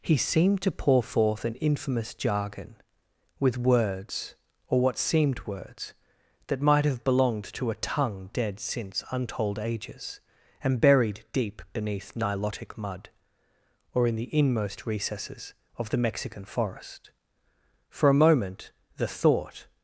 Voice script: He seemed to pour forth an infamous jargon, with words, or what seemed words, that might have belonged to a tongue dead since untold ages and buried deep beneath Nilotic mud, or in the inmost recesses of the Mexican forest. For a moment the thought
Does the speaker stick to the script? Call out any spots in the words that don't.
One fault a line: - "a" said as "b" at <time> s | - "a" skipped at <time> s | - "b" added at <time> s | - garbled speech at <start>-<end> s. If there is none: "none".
none